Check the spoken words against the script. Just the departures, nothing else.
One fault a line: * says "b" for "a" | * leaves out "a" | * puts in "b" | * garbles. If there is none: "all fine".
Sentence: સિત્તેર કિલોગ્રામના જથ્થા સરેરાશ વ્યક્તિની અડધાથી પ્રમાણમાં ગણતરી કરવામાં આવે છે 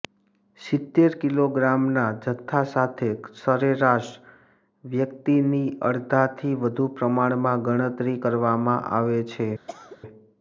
* puts in "સાથે"
* puts in "વધુ"